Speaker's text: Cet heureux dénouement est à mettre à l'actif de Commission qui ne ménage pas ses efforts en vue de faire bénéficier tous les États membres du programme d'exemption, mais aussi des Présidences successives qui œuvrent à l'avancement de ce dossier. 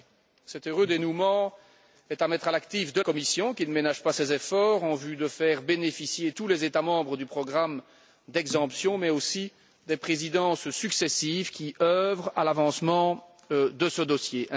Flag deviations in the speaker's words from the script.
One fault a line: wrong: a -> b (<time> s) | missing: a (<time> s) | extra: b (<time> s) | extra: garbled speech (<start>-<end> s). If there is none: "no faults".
no faults